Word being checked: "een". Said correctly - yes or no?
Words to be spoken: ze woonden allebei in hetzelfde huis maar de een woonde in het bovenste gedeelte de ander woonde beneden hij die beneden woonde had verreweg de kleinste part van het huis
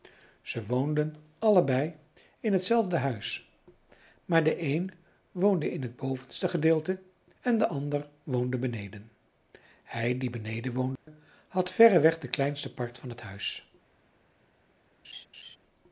yes